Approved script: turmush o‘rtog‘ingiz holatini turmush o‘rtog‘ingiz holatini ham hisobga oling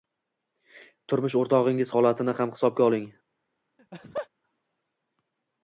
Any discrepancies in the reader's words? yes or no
yes